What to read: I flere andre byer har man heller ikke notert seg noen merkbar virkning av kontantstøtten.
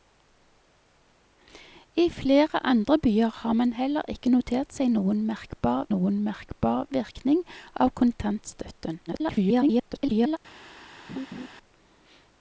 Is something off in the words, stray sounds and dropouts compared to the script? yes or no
yes